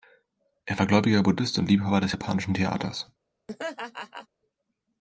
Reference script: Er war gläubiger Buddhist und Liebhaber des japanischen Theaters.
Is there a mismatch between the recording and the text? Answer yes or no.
no